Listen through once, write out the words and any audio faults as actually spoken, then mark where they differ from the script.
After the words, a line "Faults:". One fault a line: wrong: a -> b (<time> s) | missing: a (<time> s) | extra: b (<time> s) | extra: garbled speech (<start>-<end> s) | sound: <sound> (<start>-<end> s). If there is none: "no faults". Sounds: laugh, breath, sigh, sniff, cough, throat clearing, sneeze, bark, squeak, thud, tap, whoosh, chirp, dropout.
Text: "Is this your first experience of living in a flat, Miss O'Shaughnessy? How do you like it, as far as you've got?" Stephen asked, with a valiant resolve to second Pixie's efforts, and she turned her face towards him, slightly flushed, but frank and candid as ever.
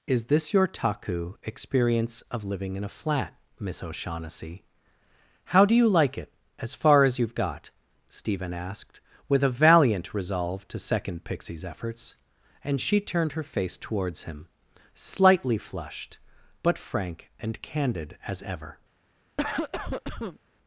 "Is this your taku experience of living in a flat, Miss O'Shaughnessy? How do you like it, as far as you've got?" Stephen asked, with a valiant resolve to second Pixie's efforts, and she turned her face towards him, slightly flushed, but frank and candid as ever.
Faults:
wrong: first -> taku (0.7 s)
sound: cough (19.4-20.4 s)